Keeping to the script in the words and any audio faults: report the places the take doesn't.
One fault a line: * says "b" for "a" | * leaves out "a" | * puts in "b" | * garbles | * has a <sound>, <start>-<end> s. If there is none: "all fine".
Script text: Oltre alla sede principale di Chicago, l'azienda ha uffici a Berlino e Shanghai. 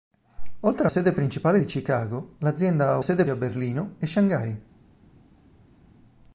* leaves out "alla"
* says "sede" for "uffici"